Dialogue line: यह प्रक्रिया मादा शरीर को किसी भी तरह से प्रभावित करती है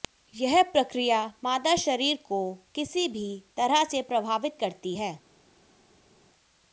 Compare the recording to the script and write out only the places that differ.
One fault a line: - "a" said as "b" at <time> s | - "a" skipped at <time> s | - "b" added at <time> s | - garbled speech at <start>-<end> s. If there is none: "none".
none